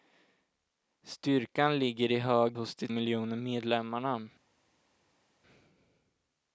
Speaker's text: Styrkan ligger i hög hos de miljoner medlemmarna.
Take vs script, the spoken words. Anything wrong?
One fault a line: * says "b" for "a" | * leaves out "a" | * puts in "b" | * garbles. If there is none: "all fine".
all fine